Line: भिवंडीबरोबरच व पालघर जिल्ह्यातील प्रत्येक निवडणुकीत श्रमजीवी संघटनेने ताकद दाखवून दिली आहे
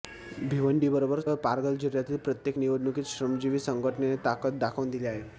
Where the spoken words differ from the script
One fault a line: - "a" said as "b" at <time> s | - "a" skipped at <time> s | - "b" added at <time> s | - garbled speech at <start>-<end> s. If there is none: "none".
none